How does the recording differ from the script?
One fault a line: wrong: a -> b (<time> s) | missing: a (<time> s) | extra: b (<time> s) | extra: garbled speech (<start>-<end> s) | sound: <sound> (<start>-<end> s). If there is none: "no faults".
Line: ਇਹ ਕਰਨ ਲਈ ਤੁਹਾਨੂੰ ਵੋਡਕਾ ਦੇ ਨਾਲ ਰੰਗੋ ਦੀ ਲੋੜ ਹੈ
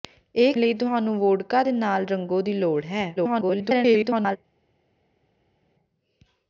missing: ਕਰਨ (0.5 s)
extra: garbled speech (3.2-4.4 s)